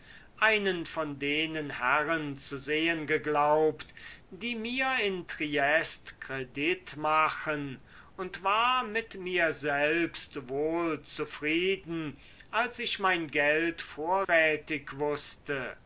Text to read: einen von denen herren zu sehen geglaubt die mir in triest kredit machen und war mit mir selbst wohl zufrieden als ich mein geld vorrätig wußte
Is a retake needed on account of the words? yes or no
no